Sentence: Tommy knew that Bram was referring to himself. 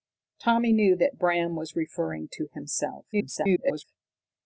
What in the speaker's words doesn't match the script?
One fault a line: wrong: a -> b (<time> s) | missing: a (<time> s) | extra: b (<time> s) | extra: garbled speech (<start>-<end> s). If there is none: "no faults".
extra: garbled speech (3.1-3.8 s)